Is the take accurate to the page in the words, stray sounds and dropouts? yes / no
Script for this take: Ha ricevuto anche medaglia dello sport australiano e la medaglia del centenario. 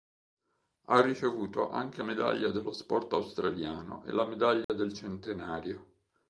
no